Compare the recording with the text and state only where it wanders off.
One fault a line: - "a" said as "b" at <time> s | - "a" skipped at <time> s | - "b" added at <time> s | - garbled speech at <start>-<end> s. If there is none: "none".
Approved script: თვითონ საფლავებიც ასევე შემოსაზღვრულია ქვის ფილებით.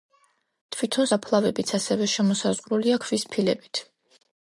none